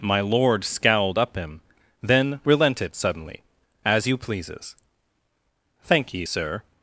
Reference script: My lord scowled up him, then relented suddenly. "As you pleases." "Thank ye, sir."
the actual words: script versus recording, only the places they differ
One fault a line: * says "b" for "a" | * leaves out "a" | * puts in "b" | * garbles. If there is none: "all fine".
all fine